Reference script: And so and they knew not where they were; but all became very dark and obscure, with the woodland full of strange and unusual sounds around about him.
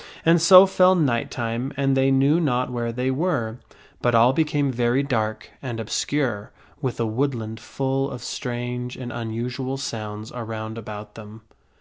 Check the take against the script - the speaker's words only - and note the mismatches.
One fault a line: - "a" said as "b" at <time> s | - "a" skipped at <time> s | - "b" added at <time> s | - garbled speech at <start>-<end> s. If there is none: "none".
- "fell night time" added at 0.7 s
- "him" said as "them" at 11.1 s